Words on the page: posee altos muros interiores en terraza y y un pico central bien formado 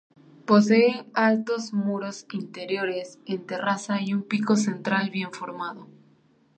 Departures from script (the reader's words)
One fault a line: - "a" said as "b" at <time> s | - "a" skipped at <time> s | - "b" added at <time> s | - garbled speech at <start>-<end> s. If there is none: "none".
- "y" skipped at 4.2 s